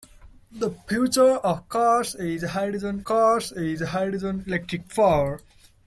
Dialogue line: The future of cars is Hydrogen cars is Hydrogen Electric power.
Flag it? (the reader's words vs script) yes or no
no